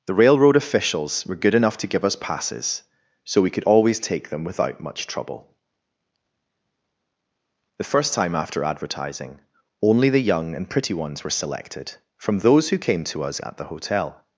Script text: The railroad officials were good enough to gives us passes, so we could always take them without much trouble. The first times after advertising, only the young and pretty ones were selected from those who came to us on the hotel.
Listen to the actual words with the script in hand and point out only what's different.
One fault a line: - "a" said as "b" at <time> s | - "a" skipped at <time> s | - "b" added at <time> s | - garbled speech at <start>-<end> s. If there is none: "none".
- "gives" said as "give" at 1.9 s
- "times" said as "time" at 8.1 s
- "on" said as "at" at 13.4 s